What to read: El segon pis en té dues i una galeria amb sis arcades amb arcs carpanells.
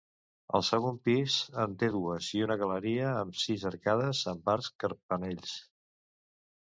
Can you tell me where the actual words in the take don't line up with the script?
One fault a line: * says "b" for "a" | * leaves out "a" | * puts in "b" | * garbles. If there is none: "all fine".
all fine